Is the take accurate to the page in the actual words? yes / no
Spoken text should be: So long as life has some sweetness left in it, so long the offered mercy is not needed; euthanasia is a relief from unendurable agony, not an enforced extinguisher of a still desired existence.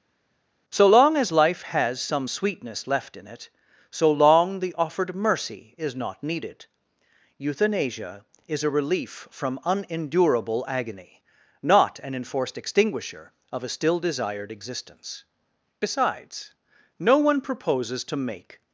no